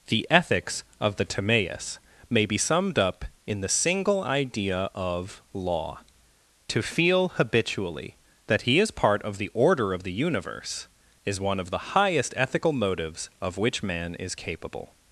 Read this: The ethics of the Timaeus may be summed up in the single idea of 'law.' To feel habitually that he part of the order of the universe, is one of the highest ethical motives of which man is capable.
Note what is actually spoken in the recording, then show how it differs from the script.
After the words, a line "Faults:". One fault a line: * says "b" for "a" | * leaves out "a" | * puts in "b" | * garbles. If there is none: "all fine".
The ethics of the Timaeus may be summed up in the single idea of 'law.' To feel habitually that he is part of the order of the universe, is one of the highest ethical motives of which man is capable.
Faults:
* puts in "is"